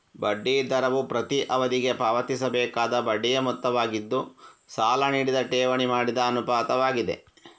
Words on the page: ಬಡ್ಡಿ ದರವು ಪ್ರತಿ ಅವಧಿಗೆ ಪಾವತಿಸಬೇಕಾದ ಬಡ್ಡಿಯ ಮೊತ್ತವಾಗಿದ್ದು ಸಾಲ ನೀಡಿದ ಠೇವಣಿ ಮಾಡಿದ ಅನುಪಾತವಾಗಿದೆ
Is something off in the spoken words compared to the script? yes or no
no